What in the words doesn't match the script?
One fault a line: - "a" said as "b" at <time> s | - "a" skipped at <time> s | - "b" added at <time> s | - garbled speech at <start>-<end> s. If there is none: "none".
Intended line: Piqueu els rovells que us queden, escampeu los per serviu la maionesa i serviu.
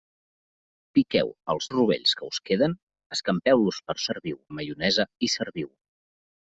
none